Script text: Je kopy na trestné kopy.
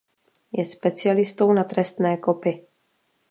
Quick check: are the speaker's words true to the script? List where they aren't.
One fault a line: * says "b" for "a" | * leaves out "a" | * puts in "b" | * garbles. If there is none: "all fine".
* says "specialistou" for "kopy"